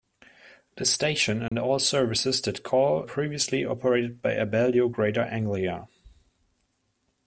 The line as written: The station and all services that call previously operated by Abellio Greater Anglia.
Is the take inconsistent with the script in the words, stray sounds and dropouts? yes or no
yes